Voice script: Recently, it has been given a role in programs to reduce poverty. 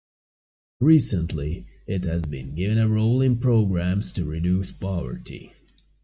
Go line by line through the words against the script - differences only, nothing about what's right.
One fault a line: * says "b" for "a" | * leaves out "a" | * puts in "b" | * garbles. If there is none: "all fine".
all fine